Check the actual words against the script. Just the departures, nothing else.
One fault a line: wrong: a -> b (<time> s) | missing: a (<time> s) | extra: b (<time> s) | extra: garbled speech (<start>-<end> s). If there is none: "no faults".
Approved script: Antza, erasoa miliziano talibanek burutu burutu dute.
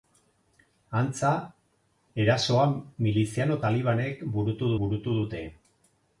no faults